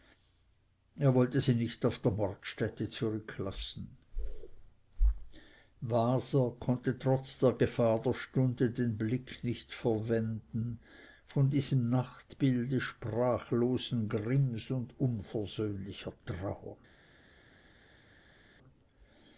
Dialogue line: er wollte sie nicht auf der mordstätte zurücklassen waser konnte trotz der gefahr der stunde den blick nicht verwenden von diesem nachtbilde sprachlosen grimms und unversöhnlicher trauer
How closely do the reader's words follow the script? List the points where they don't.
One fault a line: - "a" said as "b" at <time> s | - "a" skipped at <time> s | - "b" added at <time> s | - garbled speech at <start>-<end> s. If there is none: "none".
none